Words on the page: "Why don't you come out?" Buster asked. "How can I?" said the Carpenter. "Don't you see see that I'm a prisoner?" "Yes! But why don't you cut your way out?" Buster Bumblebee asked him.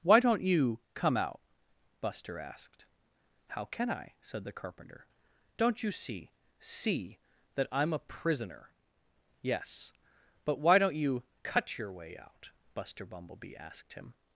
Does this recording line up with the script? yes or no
yes